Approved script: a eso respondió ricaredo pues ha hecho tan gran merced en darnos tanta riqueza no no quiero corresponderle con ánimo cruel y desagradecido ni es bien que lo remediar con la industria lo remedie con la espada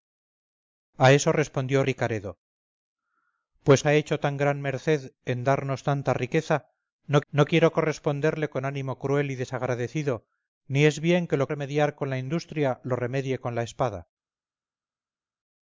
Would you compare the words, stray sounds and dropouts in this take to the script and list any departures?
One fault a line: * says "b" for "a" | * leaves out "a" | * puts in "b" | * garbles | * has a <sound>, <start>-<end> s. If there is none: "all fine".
all fine